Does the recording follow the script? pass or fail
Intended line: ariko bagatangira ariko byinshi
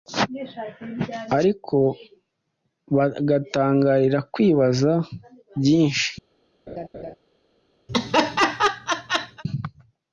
fail